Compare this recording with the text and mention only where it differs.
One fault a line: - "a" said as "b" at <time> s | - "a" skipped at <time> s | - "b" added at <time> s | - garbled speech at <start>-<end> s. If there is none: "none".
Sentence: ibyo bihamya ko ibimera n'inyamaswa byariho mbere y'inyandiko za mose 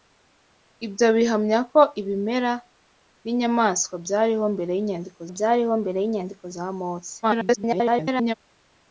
- "byariho mbere y'inyandiko" added at 5.3 s
- garbled speech at 7.2-8.3 s